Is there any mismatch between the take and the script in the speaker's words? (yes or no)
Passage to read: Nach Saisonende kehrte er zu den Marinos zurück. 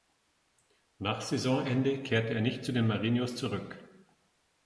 yes